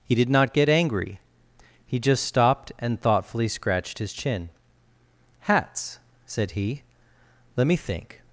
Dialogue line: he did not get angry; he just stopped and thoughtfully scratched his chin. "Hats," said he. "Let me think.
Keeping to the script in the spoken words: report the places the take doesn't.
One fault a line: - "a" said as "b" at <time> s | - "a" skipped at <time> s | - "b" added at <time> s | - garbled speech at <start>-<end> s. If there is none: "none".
none